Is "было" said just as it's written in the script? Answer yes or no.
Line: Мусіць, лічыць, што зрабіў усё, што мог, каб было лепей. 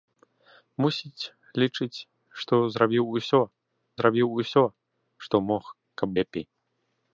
no